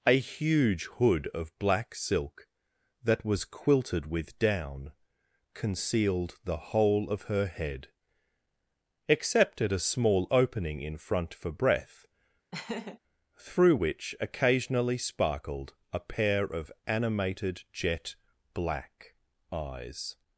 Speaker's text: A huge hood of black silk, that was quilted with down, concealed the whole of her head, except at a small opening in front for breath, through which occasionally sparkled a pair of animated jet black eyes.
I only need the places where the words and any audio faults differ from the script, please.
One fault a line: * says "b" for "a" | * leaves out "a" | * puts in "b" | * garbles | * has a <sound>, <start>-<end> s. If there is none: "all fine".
* has a laugh, 12.5-13.0 s